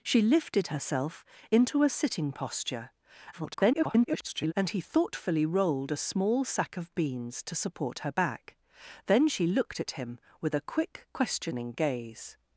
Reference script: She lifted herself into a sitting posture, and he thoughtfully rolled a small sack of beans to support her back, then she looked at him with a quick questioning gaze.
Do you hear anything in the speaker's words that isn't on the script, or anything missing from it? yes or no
yes